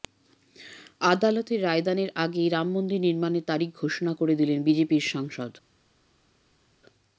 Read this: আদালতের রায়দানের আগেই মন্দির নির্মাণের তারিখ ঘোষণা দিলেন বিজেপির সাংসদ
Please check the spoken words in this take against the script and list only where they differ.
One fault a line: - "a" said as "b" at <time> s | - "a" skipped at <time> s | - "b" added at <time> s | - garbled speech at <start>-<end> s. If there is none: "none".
- "রাম" added at 2.5 s
- "করে" added at 4.1 s